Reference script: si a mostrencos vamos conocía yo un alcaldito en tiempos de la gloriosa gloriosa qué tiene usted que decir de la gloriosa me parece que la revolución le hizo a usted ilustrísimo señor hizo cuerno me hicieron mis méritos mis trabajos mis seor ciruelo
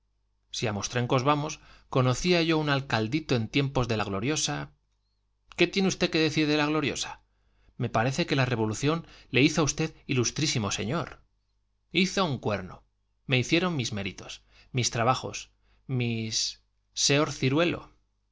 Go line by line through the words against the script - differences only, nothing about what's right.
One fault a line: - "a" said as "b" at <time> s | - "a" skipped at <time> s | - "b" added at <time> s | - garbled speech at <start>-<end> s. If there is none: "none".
- "gloriosa" skipped at 4.7 s
- "un" added at 12.3 s